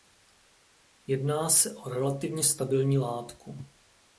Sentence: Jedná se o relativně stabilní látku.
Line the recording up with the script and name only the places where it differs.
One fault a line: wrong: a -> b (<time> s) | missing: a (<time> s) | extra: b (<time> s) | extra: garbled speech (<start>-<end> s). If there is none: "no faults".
no faults